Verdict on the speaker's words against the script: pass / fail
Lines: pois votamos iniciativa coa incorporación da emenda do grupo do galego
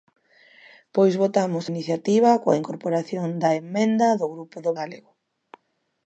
pass